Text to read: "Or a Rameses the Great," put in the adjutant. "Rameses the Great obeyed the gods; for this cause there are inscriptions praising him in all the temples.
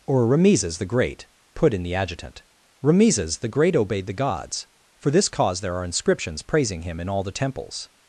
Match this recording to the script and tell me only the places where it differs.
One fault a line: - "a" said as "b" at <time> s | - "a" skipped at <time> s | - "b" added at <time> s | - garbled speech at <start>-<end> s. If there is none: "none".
- "a" skipped at 0.2 s